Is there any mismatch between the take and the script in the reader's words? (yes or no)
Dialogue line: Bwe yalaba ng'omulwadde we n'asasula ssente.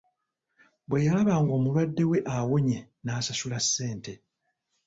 yes